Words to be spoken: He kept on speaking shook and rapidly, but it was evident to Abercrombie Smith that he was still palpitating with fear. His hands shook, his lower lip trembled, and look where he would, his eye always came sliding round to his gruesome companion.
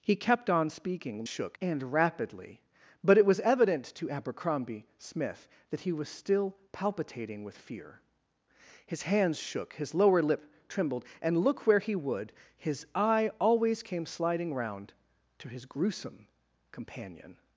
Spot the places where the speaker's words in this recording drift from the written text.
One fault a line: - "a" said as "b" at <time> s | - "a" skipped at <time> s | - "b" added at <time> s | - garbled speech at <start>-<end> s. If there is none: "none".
none